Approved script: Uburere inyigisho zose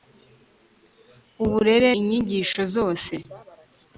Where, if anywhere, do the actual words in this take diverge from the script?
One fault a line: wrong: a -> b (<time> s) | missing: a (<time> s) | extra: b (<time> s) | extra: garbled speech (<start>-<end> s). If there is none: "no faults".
no faults